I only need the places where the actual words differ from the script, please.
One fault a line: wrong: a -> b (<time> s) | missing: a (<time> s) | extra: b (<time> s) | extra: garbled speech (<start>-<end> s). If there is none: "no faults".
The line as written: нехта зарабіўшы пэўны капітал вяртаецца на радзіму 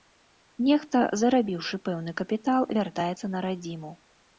no faults